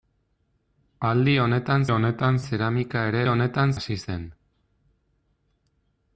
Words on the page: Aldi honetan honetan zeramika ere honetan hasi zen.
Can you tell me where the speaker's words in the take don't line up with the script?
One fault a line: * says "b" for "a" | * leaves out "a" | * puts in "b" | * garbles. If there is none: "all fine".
all fine